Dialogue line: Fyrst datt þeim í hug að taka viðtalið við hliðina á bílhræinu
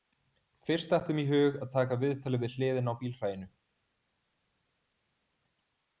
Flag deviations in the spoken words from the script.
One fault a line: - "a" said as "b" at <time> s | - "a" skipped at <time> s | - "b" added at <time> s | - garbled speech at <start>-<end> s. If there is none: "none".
none